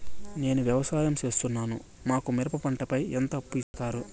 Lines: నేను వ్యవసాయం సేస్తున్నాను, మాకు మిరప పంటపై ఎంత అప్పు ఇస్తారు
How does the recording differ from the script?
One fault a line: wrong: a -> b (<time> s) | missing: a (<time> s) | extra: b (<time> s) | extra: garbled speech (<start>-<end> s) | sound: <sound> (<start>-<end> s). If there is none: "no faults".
sound: dropout (3.6-3.7 s)